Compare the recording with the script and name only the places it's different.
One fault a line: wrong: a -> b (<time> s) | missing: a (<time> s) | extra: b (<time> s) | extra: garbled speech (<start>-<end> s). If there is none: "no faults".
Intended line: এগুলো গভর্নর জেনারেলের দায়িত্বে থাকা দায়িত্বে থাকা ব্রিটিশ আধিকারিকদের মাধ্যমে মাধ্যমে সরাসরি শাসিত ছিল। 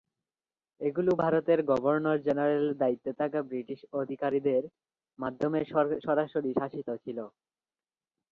extra: ভারতের (1.2 s)
missing: দায়িত্বে থাকা (3.4 s)
missing: মাধ্যমে (5.6 s)